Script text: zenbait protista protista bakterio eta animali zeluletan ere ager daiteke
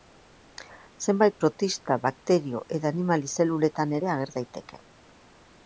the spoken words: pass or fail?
fail